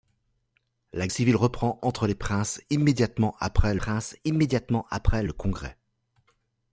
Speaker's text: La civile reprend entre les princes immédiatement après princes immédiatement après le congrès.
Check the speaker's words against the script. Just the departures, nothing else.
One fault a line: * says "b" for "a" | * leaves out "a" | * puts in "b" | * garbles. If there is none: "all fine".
all fine